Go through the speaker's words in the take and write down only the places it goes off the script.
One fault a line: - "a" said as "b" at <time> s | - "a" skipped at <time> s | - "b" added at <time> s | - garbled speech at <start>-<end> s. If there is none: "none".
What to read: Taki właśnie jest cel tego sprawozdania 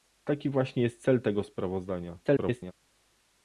- garbled speech at 2.2-2.7 s